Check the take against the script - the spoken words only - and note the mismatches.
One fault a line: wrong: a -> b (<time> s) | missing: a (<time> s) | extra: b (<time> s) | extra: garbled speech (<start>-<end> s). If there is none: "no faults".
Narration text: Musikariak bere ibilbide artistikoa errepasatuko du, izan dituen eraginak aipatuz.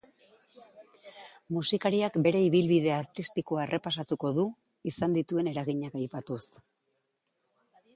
no faults